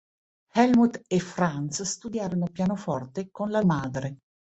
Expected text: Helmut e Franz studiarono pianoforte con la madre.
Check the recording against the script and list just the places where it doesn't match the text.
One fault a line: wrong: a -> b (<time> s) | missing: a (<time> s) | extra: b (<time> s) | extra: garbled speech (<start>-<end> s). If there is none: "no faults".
no faults